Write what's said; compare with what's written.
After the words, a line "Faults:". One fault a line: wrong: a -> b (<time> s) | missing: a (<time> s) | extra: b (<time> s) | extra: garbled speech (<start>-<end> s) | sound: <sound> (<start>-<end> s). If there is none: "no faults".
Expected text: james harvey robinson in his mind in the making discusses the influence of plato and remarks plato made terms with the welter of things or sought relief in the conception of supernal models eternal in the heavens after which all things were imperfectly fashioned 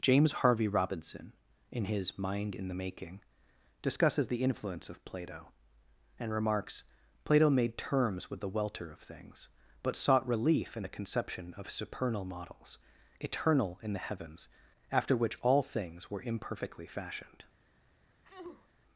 james harvey robinson in his mind in the making discusses the influence of plato and remarks plato made terms with the welter of things but sought relief in the conception of supernal models eternal in the heavens after which all things were imperfectly fashioned
Faults:
wrong: or -> but (9.8 s)
sound: sneeze (18.2-18.7 s)